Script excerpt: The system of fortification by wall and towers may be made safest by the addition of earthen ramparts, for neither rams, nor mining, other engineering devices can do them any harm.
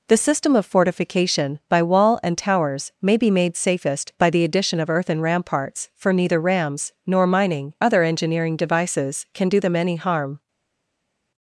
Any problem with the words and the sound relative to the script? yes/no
no